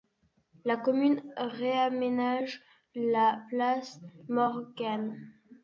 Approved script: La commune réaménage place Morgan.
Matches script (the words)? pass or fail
fail